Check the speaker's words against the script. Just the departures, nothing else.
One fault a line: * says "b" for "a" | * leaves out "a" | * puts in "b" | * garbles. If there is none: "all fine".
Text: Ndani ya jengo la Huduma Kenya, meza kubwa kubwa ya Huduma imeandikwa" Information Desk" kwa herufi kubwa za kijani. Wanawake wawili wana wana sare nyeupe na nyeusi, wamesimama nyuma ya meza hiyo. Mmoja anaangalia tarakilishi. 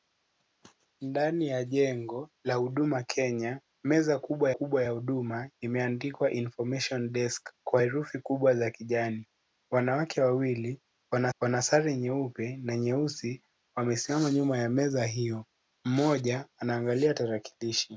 all fine